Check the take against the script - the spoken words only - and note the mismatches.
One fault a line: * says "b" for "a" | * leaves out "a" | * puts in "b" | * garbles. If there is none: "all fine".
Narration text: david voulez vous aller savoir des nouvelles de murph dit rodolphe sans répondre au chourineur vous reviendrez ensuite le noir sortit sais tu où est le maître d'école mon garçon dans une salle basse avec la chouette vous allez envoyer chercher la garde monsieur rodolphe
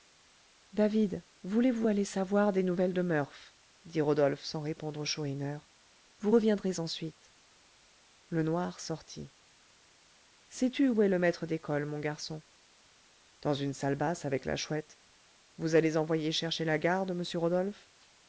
all fine